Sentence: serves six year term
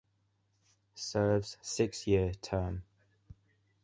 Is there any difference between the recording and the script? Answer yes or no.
no